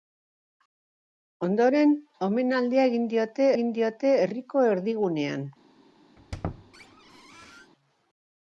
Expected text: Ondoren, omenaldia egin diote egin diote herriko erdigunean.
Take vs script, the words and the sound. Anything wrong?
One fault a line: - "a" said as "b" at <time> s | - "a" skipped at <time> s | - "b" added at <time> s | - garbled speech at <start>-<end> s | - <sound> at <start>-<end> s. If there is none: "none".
- squeak at 6.2-7.7 s